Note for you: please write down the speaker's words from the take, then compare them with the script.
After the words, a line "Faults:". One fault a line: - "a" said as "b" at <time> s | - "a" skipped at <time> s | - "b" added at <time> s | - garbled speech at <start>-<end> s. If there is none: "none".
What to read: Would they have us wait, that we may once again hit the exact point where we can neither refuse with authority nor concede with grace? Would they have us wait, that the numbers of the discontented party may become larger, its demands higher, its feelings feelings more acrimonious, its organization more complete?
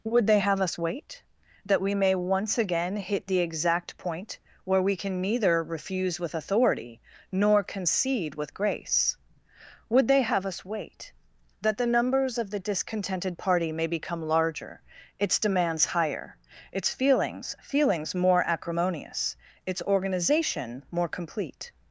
Would they have us wait, that we may once again hit the exact point where we can neither refuse with authority nor concede with grace? Would they have us wait, that the numbers of the discontented party may become larger, its demands higher, its feelings feelings more acrimonious, its organization more complete?
Faults:
none